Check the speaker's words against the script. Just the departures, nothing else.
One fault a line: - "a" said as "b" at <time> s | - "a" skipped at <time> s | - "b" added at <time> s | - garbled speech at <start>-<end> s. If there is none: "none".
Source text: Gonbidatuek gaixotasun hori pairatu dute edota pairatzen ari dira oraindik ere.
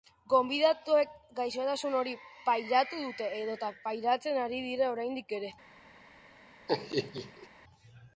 none